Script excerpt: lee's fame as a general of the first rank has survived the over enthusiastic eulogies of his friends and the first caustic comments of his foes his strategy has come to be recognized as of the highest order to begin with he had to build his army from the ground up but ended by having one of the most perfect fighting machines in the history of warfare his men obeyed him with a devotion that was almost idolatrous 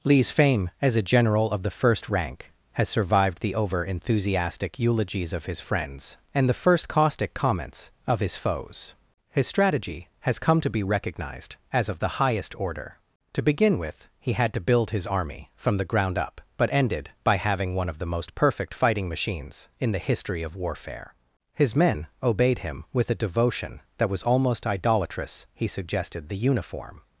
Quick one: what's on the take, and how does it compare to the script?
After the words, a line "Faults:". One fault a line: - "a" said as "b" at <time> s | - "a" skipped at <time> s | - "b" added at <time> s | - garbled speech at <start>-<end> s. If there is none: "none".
lee's fame as a general of the first rank has survived the over enthusiastic eulogies of his friends and the first caustic comments of his foes his strategy has come to be recognized as of the highest order to begin with he had to build his army from the ground up but ended by having one of the most perfect fighting machines in the history of warfare his men obeyed him with a devotion that was almost idolatrous he suggested the uniform
Faults:
- "he suggested the uniform" added at 25.5 s